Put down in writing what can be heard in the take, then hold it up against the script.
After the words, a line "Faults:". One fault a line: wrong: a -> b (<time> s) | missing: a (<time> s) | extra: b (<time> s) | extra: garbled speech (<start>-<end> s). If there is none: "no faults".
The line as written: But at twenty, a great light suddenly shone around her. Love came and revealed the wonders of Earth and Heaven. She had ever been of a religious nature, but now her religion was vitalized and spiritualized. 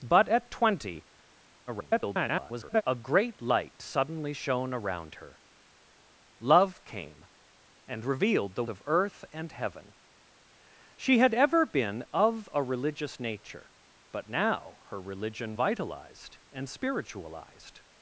But at twenty, [garbled] a great light suddenly shone around her. Love came and revealed the of Earth and Heaven. She had ever been of a religious nature, but now her religion vitalized and spiritualized.
Faults:
extra: garbled speech (1.7-2.8 s)
missing: wonders (8.6 s)
missing: was (15.6 s)